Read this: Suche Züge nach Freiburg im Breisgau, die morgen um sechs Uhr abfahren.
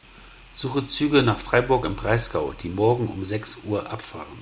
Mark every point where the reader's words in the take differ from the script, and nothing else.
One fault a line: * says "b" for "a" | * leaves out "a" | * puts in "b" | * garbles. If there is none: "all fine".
all fine